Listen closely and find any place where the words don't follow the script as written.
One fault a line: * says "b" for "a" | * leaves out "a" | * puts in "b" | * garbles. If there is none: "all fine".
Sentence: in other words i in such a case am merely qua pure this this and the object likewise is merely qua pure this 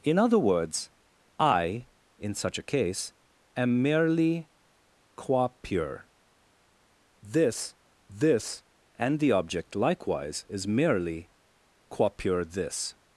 all fine